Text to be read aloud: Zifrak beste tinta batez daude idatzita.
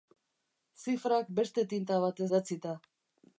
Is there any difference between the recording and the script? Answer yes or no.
yes